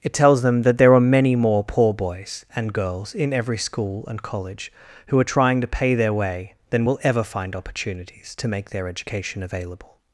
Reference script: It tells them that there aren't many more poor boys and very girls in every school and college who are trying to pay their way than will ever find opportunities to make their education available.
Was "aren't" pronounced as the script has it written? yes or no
no